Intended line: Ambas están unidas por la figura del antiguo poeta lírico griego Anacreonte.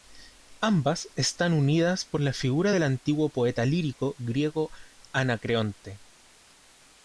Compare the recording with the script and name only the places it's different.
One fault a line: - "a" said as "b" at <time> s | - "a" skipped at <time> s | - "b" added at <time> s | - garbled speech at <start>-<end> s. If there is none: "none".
none